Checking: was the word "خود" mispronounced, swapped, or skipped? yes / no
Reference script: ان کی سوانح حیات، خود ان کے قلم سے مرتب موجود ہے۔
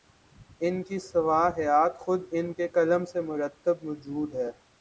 no